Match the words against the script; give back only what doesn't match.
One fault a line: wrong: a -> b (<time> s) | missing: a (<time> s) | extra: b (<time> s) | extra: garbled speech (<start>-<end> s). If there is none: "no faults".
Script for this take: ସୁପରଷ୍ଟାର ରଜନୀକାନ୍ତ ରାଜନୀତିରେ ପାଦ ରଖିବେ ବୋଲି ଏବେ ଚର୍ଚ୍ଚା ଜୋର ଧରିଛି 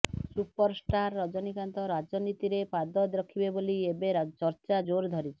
no faults